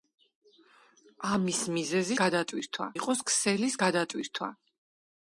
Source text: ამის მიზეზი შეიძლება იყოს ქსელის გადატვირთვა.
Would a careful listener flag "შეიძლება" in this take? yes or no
yes